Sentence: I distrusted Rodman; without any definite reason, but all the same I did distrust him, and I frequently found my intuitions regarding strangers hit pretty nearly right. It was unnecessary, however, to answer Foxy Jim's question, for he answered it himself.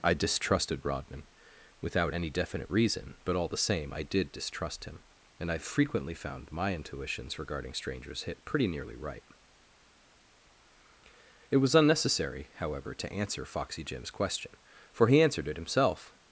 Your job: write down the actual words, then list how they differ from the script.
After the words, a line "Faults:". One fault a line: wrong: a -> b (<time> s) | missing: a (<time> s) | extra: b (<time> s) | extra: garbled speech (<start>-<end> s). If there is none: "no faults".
I distrusted Rodman; without any definite reason, but all the same I did distrust him, and I frequently found my intuitions regarding strangers hit pretty nearly right. It was unnecessary, however, to answer Foxy Jim's question, for he answered it himself.
Faults:
no faults